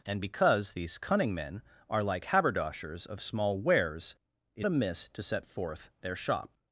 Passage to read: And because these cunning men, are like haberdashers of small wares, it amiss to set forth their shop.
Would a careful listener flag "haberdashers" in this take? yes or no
no